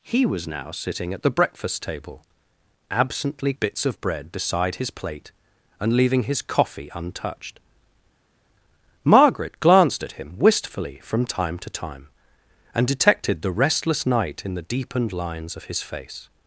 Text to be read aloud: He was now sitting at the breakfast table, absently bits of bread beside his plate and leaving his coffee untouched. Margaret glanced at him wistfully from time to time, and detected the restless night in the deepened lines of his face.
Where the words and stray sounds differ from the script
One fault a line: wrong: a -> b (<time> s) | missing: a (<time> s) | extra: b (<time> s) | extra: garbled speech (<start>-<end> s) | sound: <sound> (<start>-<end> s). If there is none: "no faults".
no faults